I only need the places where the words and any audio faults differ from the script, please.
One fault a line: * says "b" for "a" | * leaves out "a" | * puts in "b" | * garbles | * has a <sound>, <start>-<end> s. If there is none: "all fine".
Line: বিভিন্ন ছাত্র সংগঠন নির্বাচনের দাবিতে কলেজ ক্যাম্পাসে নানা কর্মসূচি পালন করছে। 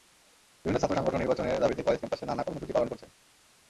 all fine